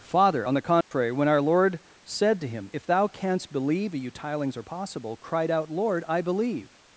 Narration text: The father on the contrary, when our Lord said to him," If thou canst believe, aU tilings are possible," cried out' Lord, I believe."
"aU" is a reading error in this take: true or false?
true